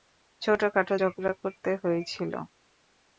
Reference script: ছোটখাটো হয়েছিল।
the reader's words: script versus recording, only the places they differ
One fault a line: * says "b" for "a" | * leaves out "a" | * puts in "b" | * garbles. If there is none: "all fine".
* puts in "ঝগড়া করতে"